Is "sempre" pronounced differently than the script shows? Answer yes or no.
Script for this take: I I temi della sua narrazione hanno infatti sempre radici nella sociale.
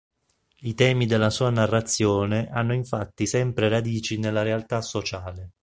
no